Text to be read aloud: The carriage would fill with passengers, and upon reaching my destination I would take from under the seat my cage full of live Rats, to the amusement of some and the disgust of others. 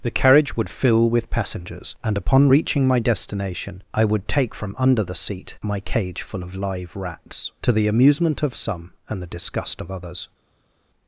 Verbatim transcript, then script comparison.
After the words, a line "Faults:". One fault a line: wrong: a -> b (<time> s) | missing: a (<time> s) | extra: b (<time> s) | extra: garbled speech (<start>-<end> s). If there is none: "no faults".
The carriage would fill with passengers, and upon reaching my destination I would take from under the seat my cage full of live Rats, to the amusement of some and the disgust of others.
Faults:
no faults